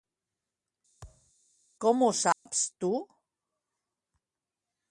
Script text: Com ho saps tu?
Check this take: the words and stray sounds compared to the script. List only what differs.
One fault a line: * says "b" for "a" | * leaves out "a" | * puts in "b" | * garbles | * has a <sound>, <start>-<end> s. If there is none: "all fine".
* has a thud, 1.0-1.3 s
* has a dropout, 2.3-2.5 s